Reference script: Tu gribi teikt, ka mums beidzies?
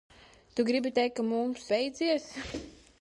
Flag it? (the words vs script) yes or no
no